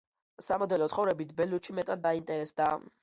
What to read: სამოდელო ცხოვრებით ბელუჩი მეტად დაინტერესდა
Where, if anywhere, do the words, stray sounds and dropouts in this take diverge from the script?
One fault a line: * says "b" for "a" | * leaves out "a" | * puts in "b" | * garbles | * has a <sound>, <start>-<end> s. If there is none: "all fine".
all fine